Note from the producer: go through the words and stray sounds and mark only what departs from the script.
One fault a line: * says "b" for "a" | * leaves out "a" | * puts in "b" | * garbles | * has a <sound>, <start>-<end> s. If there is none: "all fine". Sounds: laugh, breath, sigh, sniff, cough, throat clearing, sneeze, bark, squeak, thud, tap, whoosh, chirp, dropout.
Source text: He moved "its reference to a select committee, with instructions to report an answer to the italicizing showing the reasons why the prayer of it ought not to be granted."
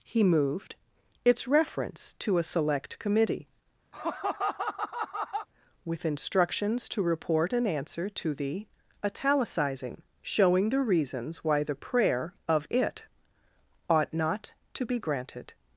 * has a laugh, 3.9-5.5 s